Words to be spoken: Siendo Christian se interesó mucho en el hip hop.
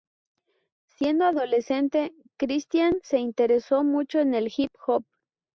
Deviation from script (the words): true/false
true